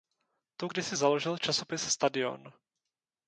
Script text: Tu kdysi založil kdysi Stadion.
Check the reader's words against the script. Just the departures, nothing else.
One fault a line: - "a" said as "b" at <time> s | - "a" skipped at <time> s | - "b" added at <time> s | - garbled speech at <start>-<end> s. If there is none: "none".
- "kdysi" said as "časopis" at 1.4 s